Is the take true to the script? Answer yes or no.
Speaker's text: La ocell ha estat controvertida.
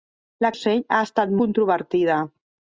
yes